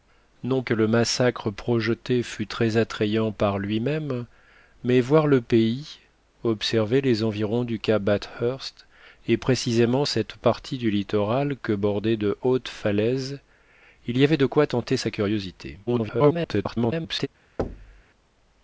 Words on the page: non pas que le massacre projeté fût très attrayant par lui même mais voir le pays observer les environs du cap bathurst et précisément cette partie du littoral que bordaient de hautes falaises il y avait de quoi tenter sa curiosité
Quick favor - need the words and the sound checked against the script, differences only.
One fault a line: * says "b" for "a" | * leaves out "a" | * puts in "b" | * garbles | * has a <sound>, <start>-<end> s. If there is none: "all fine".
* leaves out "pas"
* garbles
* has a thud, 17.6-18.0 s